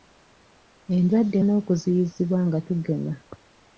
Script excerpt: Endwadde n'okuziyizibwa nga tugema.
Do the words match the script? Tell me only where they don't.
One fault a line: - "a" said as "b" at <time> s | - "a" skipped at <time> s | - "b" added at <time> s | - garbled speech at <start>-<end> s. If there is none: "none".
none